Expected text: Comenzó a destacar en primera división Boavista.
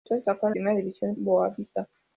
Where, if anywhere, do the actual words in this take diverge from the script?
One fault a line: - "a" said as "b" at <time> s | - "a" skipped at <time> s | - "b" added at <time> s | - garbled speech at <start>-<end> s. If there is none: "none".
none